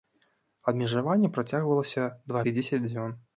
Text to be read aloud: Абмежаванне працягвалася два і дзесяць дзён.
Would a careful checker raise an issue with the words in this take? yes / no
no